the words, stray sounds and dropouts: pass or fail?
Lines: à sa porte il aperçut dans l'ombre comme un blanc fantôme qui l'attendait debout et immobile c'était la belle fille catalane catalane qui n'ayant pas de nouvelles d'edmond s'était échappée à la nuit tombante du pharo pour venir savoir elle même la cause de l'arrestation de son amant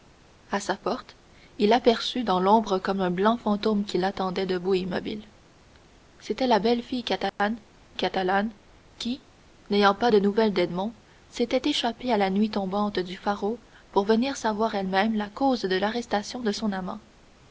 fail